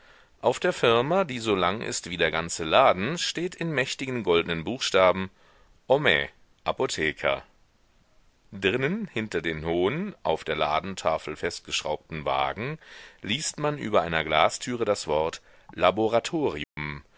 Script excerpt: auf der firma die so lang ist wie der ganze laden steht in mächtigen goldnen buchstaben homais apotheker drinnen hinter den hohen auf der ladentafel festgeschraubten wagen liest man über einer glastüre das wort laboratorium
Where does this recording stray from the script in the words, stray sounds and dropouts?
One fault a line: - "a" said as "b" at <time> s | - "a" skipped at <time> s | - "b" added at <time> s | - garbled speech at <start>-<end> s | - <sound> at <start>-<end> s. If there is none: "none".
- dropout at 16.6-16.8 s